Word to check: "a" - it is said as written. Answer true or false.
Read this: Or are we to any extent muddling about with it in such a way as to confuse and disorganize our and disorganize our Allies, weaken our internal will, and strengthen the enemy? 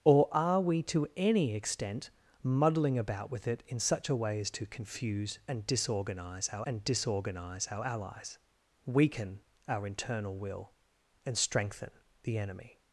true